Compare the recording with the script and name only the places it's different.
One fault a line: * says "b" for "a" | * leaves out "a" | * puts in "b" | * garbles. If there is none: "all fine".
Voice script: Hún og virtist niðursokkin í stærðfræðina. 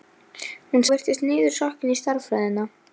all fine